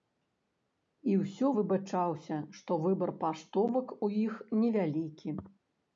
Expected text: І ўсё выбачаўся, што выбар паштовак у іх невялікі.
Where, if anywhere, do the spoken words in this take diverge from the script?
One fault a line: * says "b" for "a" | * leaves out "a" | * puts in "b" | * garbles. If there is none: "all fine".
all fine